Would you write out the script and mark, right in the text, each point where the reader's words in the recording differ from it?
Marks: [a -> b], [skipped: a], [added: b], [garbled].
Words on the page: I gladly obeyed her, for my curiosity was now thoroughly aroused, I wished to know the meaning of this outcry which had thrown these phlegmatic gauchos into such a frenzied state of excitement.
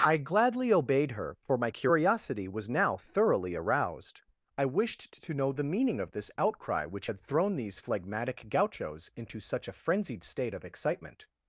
I gladly obeyed her, for my curiosity was now thoroughly aroused, I wished to know the meaning of this outcry which had thrown these phlegmatic gauchos into such a frenzied state of excitement.